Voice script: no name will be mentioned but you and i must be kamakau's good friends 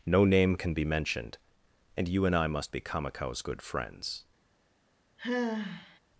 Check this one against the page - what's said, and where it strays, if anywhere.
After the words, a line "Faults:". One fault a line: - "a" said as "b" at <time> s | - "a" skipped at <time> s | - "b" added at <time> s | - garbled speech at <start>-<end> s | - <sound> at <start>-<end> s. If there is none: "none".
no name can be mentioned and you and i must be kamakau's good friends
Faults:
- "will" said as "can" at 0.6 s
- "but" said as "and" at 1.9 s
- sigh at 5.2-6.0 s